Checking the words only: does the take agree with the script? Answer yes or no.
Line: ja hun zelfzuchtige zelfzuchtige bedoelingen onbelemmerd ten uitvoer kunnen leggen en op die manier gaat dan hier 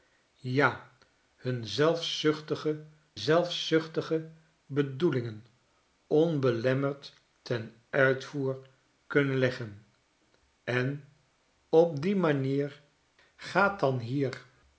yes